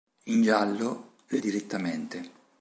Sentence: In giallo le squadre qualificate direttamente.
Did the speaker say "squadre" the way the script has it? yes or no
no